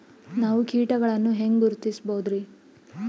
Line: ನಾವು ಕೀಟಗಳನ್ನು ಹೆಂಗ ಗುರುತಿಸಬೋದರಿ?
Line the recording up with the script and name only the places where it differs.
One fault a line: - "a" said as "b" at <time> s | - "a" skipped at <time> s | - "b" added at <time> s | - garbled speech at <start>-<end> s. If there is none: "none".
none